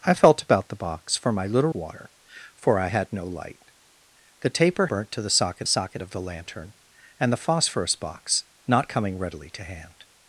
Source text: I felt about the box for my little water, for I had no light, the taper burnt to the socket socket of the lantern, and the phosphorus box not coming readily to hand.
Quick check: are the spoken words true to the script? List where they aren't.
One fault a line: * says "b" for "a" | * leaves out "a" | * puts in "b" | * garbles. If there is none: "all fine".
all fine